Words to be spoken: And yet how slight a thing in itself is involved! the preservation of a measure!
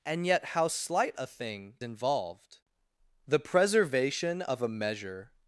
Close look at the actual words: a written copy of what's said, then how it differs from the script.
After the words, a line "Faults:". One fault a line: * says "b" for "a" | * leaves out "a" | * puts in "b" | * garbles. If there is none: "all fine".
And yet how slight a thing involved! the preservation of a measure!
Faults:
* leaves out "in itself is"